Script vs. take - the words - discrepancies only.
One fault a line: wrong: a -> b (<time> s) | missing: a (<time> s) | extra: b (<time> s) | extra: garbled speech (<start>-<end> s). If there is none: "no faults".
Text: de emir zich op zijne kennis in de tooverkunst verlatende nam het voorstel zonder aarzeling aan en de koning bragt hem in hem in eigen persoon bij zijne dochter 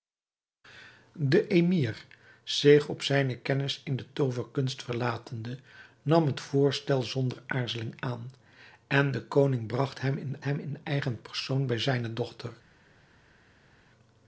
no faults